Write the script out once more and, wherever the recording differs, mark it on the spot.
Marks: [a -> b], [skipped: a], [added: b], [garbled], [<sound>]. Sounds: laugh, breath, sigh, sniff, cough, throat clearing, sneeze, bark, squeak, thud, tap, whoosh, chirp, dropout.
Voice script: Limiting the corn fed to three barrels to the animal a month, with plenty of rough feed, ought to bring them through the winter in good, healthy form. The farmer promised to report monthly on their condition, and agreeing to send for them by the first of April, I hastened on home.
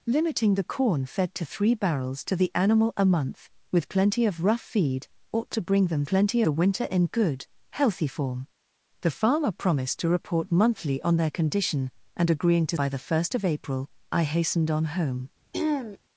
Limiting the corn fed to three barrels to the animal a month, with plenty of rough feed, ought to bring them [through -> plenty] the winter in good, healthy form. The farmer promised to report monthly on their condition, and agreeing to [skipped: send for them] by the first of April, I hastened on home. [throat clearing]